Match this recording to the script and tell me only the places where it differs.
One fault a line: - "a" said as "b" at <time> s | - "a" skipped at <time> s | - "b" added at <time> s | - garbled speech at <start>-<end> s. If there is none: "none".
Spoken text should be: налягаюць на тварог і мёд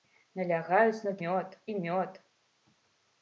- "тварог" said as "мёд" at 1.3 s